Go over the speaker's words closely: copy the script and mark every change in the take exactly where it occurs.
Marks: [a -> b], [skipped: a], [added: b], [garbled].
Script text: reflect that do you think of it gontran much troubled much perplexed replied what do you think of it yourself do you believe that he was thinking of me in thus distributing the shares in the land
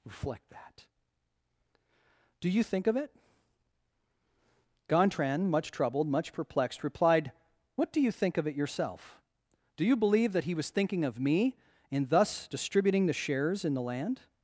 reflect that do you think of it gontran much troubled much perplexed replied what do you think of it yourself do you believe that he was thinking of me in thus distributing the shares in the land